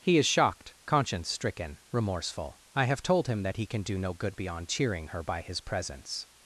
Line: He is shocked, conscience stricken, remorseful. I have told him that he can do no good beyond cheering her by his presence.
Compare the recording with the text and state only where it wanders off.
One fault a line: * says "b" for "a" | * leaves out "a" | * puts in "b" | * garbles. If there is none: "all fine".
all fine